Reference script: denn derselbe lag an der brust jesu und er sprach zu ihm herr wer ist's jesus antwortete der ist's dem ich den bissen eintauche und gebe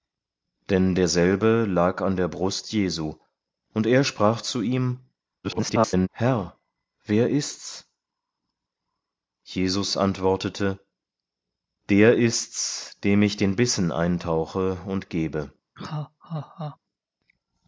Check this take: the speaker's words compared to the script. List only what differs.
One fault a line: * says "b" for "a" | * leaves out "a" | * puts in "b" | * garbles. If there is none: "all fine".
* garbles